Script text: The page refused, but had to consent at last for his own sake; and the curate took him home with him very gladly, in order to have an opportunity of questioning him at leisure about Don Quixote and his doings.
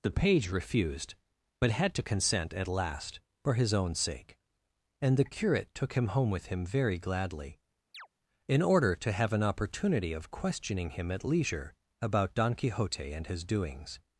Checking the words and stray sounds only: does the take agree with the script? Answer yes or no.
no